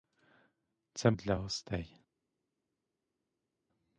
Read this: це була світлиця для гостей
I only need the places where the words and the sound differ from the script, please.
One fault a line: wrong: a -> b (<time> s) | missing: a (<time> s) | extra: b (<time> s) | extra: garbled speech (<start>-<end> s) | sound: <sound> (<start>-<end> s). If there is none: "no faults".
missing: була світлиця (1.1 s)